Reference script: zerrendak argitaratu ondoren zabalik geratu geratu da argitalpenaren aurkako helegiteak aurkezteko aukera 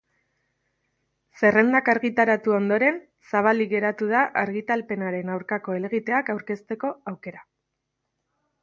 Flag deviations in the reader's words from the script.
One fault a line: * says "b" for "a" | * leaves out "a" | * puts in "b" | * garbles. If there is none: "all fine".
* leaves out "geratu"